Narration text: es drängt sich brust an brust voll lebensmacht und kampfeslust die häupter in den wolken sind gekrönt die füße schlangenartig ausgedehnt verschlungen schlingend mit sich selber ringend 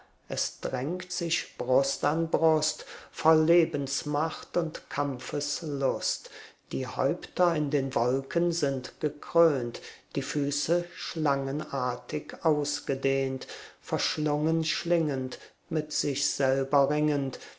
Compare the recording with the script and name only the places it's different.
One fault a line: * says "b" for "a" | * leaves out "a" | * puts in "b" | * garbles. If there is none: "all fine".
all fine